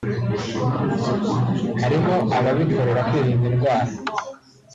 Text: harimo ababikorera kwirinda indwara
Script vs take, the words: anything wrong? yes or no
no